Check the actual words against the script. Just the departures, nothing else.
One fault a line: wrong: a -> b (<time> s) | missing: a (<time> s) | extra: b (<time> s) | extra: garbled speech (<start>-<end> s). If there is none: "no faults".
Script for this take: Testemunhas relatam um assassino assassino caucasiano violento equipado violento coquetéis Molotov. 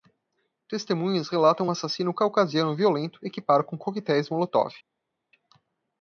missing: assassino (2.1 s)
wrong: violento -> com (3.6 s)